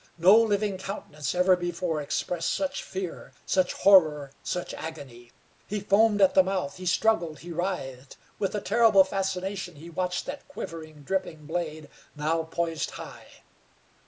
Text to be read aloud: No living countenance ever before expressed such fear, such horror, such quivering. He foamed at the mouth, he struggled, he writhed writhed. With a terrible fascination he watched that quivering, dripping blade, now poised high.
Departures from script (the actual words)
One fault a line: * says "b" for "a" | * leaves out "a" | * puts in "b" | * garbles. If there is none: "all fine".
* says "agony" for "quivering"
* leaves out "writhed"